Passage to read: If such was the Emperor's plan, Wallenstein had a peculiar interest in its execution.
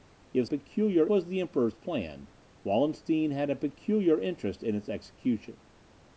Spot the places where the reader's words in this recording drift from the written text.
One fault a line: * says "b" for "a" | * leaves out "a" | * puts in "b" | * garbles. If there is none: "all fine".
* says "peculiar" for "such"